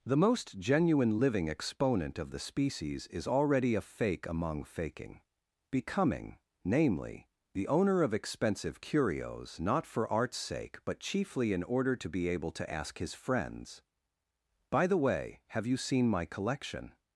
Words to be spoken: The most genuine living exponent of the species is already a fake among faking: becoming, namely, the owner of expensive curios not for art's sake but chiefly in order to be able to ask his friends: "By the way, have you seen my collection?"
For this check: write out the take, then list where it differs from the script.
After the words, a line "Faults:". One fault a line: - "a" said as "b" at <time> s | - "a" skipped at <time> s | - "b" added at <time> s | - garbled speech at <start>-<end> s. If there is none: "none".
The most genuine living exponent of the species is already a fake among faking: becoming, namely, the owner of expensive curios not for art's sake but chiefly in order to be able to ask his friends: "By the way, have you seen my collection?"
Faults:
none